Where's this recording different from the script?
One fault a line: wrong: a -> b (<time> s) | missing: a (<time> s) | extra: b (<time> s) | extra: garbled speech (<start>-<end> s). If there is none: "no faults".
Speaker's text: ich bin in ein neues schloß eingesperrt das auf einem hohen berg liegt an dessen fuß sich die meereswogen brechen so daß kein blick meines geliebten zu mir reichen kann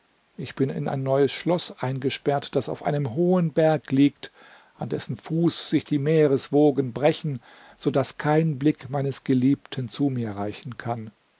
no faults